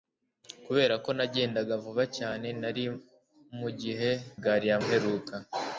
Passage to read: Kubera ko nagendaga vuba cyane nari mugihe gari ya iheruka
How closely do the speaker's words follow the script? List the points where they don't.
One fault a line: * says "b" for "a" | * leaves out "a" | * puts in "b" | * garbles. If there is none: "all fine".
all fine